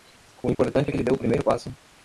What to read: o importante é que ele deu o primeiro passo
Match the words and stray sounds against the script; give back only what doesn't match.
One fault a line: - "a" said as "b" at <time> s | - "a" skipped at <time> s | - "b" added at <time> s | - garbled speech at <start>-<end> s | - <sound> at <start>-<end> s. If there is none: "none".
- dropout at 0.5-0.6 s